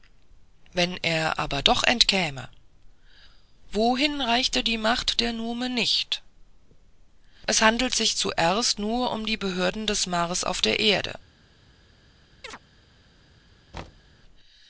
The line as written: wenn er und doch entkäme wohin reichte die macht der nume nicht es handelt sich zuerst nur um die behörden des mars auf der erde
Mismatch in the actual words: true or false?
true